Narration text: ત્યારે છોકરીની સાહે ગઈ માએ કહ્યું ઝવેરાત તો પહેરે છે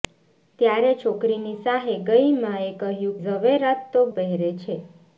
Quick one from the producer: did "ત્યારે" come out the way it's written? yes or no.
yes